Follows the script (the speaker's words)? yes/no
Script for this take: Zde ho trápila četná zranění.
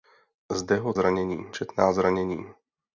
no